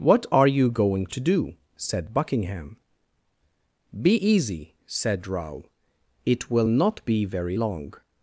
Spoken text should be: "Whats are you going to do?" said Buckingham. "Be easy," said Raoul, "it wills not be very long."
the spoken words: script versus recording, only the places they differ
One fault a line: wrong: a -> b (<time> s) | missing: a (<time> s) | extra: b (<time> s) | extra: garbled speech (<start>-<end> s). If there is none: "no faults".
wrong: Whats -> What (0.0 s)
wrong: wills -> will (6.5 s)